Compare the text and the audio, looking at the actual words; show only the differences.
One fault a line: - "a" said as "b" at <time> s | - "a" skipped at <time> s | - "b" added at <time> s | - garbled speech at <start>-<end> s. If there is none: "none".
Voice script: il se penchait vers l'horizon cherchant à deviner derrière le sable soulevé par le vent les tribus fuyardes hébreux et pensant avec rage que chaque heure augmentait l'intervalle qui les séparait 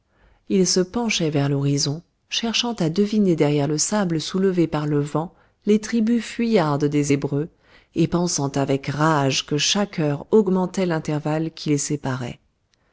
- "des" added at 6.8 s